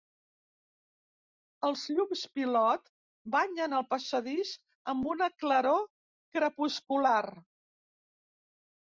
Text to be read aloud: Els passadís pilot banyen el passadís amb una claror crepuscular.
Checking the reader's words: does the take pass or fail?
fail